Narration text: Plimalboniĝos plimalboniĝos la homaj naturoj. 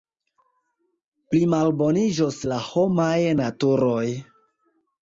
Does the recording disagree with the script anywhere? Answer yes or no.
yes